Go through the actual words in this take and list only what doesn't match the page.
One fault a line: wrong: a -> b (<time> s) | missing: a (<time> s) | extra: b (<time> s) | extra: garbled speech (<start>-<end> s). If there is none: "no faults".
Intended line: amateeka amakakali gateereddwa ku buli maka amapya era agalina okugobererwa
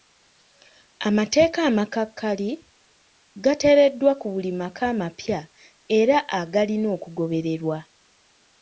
no faults